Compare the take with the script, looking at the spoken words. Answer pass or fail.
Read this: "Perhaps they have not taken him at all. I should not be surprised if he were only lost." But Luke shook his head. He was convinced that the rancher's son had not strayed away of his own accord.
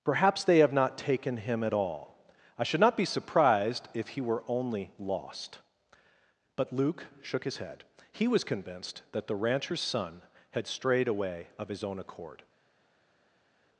fail